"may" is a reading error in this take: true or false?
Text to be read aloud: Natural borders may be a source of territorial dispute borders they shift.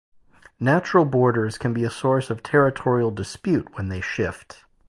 true